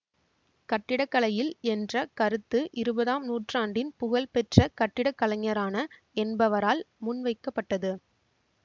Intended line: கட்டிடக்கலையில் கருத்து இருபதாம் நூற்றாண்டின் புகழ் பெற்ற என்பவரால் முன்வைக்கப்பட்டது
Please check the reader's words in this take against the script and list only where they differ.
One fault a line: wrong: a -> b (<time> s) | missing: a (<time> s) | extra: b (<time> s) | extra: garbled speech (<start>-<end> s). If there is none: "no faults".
extra: என்ற (1.7 s)
extra: கட்டிடக்கலைஞரான (4.8 s)